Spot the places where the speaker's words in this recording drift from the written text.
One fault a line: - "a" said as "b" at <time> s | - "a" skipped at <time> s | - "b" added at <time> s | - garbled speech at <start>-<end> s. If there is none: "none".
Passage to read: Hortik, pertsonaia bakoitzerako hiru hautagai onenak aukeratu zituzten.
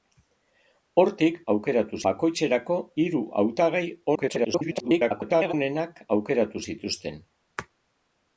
- "pertsonaia" said as "aukeratu" at 1.6 s
- garbled speech at 4.1-5.5 s